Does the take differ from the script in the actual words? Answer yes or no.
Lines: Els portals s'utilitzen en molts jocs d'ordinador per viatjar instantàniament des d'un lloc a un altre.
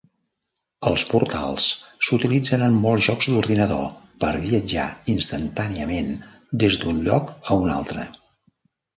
no